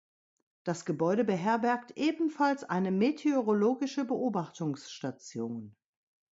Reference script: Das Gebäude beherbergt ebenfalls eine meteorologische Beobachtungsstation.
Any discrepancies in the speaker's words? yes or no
no